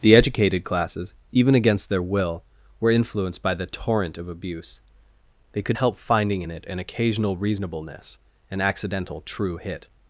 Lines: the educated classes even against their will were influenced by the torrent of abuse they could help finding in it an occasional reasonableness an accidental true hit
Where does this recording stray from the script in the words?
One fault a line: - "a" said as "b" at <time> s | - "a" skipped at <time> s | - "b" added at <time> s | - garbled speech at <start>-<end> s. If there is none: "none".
none